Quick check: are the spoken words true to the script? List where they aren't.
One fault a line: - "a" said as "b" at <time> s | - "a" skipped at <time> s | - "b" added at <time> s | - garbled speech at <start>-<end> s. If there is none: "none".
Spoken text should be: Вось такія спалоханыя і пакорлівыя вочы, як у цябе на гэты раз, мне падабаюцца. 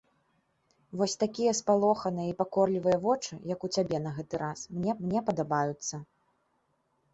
- "мне" added at 5.1 s